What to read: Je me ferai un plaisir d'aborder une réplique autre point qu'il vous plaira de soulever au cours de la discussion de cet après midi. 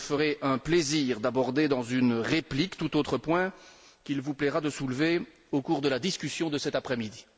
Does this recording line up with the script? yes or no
no